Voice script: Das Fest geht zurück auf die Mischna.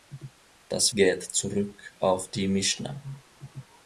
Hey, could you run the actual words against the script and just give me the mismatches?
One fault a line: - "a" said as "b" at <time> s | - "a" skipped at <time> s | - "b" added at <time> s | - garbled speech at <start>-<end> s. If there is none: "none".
- "Fest" skipped at 0.9 s